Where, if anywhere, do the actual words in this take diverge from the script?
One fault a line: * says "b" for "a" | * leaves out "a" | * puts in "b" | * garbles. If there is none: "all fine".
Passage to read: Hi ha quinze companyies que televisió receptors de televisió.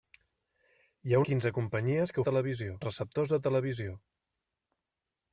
all fine